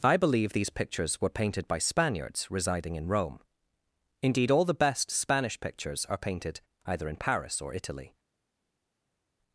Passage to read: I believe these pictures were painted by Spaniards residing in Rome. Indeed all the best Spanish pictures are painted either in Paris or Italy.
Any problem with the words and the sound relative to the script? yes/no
no